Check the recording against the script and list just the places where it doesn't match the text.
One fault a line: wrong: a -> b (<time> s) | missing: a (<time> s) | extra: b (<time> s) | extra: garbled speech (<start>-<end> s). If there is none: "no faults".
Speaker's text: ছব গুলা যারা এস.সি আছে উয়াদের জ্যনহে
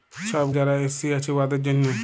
missing: গুলা (0.5 s)